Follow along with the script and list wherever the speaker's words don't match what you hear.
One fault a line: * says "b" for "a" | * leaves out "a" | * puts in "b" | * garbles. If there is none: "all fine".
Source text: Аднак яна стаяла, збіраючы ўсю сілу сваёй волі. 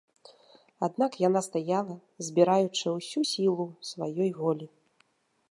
all fine